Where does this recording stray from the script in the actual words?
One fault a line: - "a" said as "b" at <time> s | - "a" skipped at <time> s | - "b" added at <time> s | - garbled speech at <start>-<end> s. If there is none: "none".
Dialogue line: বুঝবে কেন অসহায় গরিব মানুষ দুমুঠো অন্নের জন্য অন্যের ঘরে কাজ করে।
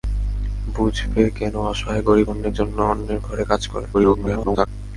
- "মানুষ দুমুঠো" skipped at 2.3 s
- garbled speech at 3.9-4.7 s